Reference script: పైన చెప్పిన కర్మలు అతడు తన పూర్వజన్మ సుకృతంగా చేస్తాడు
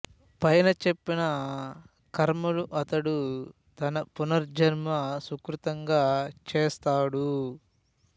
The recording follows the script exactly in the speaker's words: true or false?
true